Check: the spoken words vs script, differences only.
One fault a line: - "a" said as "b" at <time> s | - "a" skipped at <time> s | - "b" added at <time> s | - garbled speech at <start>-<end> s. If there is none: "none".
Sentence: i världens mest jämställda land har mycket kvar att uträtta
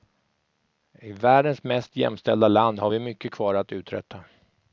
- "vi" added at 2.9 s